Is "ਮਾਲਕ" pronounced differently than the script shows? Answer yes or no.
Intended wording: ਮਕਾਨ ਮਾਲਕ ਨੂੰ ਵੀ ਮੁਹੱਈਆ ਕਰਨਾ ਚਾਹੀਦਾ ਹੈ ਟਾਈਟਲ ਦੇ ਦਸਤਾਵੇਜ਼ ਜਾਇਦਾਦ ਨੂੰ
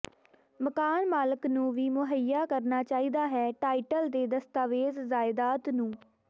no